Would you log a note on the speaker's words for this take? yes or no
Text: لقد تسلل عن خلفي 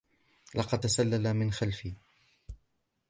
yes